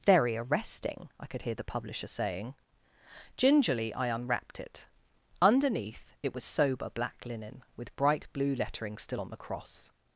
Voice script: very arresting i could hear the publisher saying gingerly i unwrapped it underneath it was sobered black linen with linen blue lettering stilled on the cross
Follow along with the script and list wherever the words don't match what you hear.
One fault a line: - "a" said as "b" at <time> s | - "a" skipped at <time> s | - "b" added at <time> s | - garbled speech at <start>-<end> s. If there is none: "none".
- "sobered" said as "sober" at 6.4 s
- "linen" said as "bright" at 8.0 s
- "stilled" said as "still" at 9.0 s